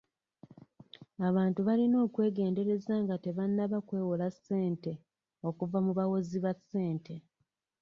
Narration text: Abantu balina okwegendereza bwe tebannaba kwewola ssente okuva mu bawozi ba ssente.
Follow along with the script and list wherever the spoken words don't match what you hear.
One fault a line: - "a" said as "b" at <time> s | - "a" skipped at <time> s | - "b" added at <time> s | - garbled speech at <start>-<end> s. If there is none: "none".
- "bwe" said as "nga" at 3.0 s